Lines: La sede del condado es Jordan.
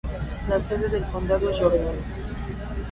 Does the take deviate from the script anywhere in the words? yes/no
no